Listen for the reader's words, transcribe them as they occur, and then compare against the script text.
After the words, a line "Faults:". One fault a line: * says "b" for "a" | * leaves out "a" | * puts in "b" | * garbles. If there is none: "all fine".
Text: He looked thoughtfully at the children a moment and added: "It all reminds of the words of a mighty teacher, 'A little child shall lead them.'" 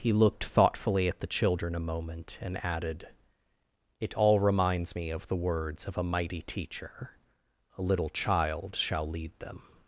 He looked thoughtfully at the children a moment and added: "It all reminds me of the words of a mighty teacher, 'A little child shall lead them.'"
Faults:
* puts in "me"